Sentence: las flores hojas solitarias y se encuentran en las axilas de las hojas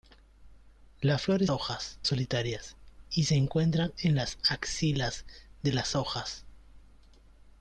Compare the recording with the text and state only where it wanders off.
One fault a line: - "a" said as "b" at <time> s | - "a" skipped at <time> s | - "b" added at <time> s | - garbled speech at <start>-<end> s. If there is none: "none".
none